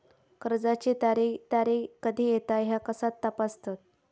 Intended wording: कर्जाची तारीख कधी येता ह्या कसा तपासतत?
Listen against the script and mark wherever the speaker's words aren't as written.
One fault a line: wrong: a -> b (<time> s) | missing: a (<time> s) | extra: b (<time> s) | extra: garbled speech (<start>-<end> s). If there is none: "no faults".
extra: तारीख (1.5 s)